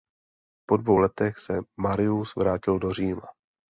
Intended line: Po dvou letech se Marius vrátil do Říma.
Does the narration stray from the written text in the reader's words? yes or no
no